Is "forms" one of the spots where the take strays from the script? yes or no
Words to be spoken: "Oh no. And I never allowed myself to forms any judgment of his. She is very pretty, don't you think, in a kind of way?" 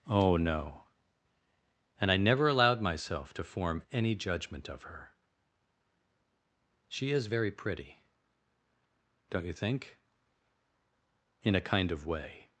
yes